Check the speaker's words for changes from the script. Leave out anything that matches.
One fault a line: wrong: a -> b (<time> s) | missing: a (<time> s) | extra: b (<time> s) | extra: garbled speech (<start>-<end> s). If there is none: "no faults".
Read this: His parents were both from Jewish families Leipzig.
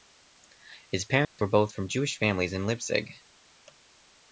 extra: in (2.5 s)